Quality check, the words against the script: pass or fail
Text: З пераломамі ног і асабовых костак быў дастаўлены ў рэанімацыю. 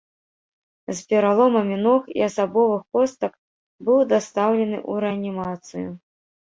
pass